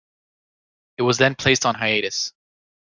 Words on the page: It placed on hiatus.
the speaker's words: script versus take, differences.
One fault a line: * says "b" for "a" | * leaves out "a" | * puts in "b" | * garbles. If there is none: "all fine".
* puts in "was then"